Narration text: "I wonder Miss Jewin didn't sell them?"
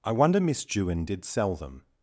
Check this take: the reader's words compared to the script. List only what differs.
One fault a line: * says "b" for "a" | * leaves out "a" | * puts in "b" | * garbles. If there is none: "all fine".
* says "did" for "didn't"